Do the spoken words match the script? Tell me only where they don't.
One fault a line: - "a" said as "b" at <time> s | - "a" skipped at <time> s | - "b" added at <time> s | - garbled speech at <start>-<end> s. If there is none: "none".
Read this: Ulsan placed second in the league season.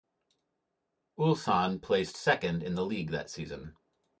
- "that" added at 3.1 s